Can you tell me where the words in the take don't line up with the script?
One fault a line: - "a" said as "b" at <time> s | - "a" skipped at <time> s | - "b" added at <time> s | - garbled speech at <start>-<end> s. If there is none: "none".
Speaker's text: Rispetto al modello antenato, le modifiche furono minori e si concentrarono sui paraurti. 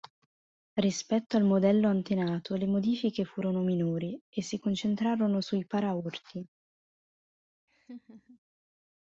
none